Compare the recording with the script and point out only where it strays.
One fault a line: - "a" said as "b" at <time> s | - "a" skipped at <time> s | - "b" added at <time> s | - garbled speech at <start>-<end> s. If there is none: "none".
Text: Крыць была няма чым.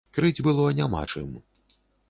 - "была" said as "было" at 0.5 s